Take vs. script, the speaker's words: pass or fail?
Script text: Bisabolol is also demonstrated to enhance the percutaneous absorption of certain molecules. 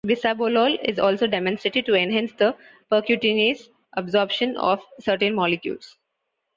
pass